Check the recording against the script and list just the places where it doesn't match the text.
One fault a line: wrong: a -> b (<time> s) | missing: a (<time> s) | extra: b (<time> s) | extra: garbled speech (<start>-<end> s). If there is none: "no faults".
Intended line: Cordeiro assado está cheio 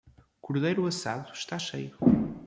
no faults